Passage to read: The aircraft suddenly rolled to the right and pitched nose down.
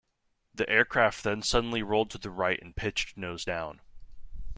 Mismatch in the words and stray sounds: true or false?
true